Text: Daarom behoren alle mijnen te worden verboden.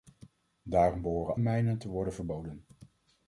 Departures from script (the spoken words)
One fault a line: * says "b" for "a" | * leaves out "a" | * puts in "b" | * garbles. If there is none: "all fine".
* leaves out "alle"